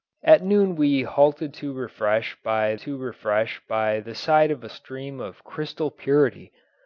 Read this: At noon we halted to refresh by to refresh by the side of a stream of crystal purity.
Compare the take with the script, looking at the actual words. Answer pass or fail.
pass